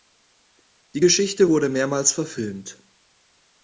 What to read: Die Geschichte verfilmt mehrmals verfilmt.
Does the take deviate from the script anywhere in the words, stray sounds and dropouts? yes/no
yes